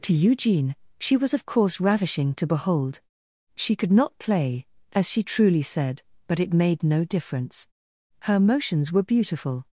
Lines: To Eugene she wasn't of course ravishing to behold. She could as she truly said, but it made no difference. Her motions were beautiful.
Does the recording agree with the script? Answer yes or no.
no